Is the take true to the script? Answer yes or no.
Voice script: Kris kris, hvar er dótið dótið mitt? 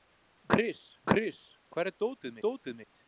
yes